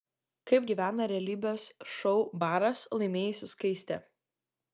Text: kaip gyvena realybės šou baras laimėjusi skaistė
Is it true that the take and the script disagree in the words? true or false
false